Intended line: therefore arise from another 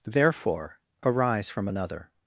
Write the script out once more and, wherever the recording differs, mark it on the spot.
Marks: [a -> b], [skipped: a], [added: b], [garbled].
therefore arise from another